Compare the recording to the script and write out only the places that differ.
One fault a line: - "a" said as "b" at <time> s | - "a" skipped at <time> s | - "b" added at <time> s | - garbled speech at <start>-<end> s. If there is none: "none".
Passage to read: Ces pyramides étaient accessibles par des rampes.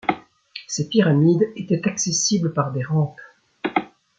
none